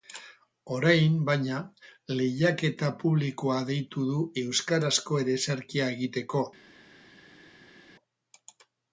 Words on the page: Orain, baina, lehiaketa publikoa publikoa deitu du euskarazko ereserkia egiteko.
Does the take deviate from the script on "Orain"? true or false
false